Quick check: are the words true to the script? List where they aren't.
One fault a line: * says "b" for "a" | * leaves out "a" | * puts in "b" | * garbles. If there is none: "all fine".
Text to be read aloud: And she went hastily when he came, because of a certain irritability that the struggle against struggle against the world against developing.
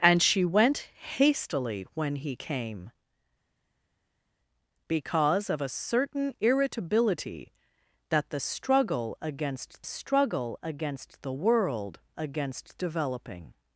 all fine